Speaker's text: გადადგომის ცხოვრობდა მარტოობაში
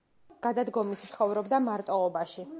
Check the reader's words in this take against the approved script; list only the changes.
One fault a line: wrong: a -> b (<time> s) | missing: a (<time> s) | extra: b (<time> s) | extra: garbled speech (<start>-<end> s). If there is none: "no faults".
no faults